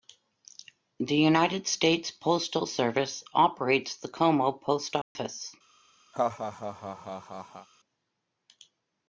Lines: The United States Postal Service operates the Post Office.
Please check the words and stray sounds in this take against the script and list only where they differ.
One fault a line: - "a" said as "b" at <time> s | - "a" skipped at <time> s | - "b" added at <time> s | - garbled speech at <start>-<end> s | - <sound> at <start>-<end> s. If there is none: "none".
- "Como" added at 4.1 s
- dropout at 5.0-5.2 s
- laugh at 6.1-7.7 s